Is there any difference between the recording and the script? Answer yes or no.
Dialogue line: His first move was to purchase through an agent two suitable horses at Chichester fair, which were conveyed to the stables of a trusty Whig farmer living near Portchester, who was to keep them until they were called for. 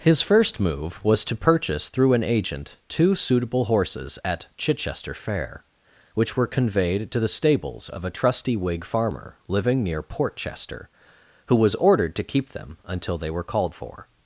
yes